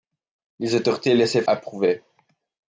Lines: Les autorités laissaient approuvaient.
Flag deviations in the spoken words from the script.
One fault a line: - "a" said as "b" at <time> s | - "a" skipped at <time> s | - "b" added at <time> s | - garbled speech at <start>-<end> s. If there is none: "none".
none